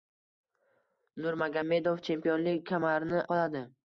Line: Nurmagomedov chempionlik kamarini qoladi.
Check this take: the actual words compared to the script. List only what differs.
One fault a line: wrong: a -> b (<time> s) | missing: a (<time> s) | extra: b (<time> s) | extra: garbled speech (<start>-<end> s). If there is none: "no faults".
no faults